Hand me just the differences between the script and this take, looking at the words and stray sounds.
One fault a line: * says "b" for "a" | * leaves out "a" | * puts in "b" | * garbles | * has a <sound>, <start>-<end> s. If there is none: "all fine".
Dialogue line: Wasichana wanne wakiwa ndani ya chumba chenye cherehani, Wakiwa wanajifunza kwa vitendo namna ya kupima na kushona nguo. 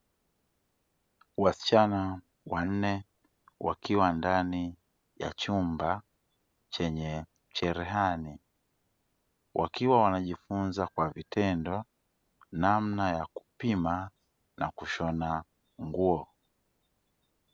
all fine